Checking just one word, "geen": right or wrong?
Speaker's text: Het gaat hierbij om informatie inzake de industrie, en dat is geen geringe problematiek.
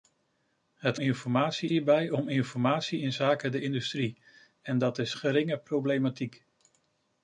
wrong